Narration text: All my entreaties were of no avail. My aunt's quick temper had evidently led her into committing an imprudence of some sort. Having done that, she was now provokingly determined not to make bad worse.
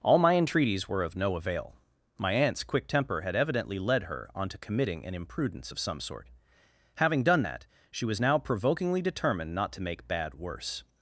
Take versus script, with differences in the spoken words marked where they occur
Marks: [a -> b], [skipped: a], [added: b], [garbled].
All my entreaties were of no avail. My aunt's quick temper had evidently led her [into -> onto] committing an imprudence of some sort. Having done that, she was now provokingly determined not to make bad worse.